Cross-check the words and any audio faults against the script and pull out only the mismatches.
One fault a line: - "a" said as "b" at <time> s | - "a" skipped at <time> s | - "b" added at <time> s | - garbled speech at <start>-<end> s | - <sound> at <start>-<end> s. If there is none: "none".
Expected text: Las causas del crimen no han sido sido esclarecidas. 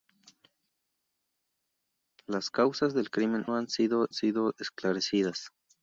none